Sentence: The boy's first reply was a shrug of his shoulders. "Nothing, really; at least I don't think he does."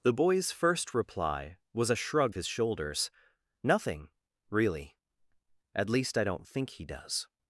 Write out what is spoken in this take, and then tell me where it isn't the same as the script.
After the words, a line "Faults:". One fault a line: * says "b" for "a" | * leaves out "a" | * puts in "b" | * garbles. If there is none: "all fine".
The boy's first reply was a shrug his shoulders. "Nothing, really; at least I don't think he does."
Faults:
* leaves out "of"